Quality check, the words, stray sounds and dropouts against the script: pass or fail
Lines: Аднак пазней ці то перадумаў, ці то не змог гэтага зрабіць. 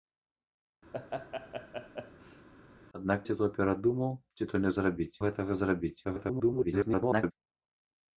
fail